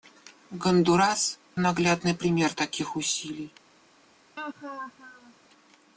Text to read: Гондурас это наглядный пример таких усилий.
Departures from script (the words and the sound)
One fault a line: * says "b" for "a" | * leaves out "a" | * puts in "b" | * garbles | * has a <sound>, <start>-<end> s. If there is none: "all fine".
* leaves out "это"
* has a laugh, 4.4-5.3 s